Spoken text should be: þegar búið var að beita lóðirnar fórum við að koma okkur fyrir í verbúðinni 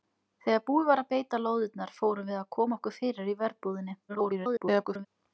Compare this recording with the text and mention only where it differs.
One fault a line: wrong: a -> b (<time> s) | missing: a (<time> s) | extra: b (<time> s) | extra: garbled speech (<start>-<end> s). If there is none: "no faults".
extra: garbled speech (4.1-5.1 s)